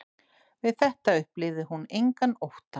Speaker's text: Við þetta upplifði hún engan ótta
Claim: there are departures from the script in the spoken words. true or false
false